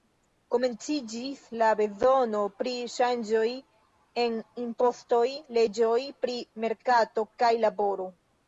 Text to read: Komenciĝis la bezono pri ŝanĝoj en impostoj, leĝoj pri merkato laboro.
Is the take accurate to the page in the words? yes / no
no